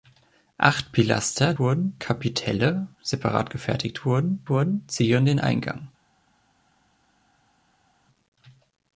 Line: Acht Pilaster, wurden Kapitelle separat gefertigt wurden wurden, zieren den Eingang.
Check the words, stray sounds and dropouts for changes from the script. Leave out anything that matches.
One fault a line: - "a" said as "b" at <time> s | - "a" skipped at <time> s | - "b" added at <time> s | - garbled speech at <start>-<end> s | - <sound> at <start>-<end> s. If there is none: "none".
none